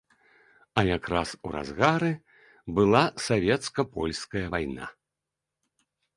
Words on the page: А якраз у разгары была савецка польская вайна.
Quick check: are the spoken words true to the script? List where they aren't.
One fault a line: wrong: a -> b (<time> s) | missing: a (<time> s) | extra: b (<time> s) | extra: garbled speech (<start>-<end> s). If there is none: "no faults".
no faults